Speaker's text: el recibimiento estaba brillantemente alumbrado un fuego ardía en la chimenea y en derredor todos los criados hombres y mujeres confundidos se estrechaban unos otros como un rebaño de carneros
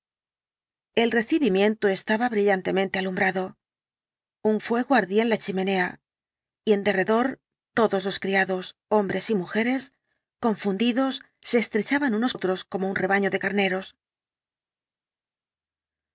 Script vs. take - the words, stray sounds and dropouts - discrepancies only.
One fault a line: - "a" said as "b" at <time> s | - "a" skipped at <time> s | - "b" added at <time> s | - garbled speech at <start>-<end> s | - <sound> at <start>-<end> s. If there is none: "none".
none